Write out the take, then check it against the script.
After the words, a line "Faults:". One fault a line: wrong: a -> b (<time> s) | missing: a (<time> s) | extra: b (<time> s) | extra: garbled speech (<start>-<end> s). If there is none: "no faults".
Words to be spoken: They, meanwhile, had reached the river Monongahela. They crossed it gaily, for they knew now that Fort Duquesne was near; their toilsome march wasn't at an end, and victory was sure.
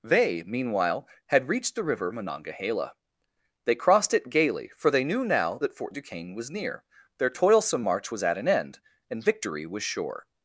They, meanwhile, had reached the river Monongahela. They crossed it gaily, for they knew now that Fort Duquesne was near; their toilsome march was at an end, and victory was sure.
Faults:
wrong: wasn't -> was (8.1 s)